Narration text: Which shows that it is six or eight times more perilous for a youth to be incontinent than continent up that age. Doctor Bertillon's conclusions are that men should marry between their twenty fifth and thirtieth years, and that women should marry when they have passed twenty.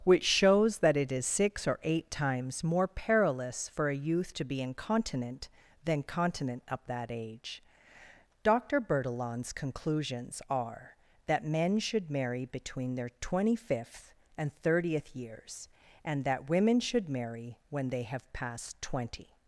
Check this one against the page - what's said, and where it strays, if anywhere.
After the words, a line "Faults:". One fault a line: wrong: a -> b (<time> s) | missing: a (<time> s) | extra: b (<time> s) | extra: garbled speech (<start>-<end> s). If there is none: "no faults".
Which shows that it is six or eight times more perilous for a youth to be incontinent than continent up that age. Doctor Bertillon's conclusions are that men should marry between their twenty fifth and thirtieth years, and that women should marry when they have passed twenty.
Faults:
no faults